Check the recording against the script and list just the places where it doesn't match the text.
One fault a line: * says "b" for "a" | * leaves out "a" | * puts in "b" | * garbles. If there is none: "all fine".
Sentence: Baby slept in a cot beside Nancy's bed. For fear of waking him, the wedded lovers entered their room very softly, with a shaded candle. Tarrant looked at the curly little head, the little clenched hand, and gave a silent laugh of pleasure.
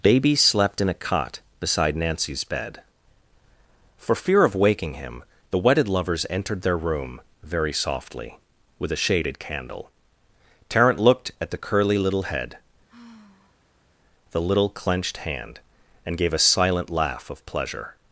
all fine